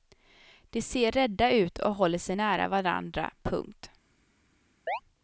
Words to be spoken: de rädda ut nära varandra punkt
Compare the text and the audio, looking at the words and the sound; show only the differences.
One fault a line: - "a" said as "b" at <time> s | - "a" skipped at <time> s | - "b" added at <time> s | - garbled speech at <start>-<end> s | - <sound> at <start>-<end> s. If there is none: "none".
- "ser" added at 0.8 s
- "och håller sig" added at 1.8 s
- chirp at 4.9-5.0 s